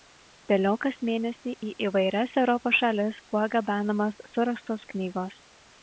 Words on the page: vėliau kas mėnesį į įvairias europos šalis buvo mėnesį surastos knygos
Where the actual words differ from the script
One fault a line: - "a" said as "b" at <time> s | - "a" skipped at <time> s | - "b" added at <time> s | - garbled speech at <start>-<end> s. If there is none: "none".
- "mėnesį" said as "gabenamos" at 3.6 s